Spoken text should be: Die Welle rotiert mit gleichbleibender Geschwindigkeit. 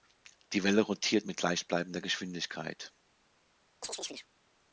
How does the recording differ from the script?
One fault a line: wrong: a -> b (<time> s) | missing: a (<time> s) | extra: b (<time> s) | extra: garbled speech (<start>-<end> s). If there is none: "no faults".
no faults